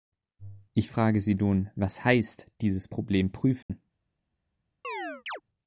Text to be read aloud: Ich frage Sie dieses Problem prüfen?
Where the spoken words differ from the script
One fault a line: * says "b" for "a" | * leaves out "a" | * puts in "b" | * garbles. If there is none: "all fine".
* puts in "nun was heißt"